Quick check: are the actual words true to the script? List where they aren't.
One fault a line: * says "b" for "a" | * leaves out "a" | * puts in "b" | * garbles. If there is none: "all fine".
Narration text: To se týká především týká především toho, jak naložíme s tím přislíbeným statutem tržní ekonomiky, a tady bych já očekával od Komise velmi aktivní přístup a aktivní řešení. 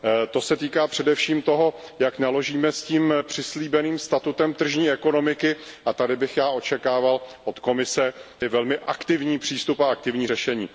* leaves out "týká především"